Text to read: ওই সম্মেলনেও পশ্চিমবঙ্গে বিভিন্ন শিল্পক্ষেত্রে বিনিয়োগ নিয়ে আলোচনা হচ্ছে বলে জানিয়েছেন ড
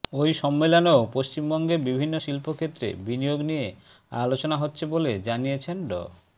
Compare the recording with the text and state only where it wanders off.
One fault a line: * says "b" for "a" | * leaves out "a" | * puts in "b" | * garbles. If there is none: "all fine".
all fine